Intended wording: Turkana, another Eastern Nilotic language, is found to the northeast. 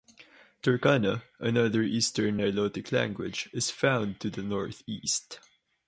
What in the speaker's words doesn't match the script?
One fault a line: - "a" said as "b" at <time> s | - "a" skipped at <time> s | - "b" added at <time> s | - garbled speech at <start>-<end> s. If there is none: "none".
none